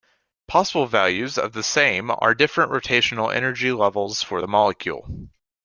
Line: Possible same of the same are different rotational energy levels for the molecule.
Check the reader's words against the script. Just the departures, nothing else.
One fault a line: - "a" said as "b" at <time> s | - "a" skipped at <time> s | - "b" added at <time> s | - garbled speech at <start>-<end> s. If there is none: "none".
- "same" said as "values" at 0.9 s